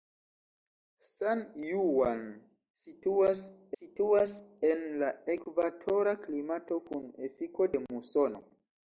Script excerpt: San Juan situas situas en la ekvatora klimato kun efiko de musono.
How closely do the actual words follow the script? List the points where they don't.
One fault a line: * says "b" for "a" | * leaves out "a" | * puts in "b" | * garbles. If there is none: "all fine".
all fine